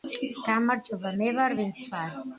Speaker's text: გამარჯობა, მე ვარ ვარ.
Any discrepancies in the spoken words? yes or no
yes